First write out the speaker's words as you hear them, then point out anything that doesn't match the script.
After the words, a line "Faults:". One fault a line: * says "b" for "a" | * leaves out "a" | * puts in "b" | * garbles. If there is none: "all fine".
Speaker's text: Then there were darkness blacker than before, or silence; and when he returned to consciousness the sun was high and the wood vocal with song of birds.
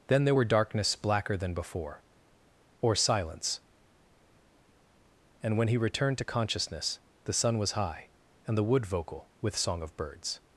Then there were darkness blacker than before, or silence; and when he returned to consciousness the sun was high and the wood vocal with song of birds.
Faults:
all fine